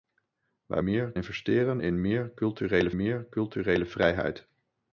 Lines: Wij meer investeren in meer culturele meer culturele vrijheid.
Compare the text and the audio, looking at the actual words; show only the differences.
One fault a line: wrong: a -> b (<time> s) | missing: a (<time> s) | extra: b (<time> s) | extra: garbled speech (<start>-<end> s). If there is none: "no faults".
no faults